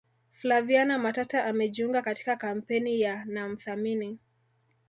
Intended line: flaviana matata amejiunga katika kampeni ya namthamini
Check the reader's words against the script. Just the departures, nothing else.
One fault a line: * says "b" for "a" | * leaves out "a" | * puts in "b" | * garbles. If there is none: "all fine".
all fine